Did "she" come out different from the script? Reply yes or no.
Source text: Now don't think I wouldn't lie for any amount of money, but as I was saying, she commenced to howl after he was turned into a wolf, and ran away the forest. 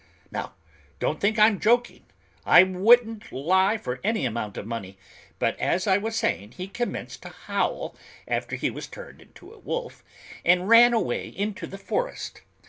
yes